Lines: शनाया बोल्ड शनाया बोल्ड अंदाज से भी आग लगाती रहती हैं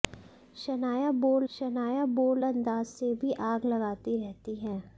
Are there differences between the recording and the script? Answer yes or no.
no